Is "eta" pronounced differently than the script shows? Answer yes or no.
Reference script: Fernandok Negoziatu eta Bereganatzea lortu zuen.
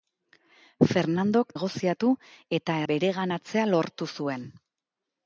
no